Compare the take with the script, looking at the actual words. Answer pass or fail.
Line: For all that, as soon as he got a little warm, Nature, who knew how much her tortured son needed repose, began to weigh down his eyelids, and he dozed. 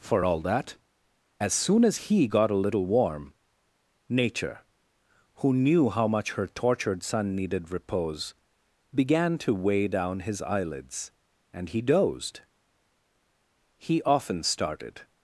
fail